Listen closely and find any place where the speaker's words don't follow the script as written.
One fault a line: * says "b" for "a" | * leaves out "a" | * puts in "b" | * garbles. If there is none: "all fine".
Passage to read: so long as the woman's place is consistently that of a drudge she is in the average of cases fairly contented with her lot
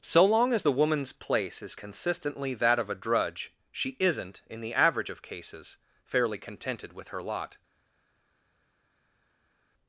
* says "isn't" for "is"